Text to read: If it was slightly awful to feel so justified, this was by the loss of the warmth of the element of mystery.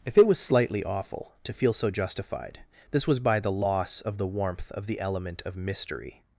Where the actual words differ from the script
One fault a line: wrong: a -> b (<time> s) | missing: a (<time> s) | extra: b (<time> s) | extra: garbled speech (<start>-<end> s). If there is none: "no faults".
no faults